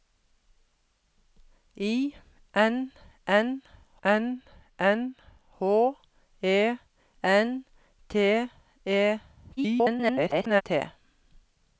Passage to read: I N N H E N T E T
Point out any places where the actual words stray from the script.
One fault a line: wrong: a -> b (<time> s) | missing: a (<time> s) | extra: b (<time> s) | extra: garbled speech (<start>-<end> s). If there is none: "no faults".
extra: N N (4.0 s)
extra: garbled speech (9.6-10.6 s)